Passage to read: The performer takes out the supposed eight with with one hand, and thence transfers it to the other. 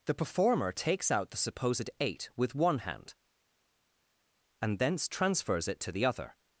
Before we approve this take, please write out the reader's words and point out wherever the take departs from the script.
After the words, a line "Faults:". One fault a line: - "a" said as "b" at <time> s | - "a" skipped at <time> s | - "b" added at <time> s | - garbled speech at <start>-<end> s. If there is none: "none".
The performer takes out the supposed eight with one hand, and thence transfers it to the other.
Faults:
- "with" skipped at 2.5 s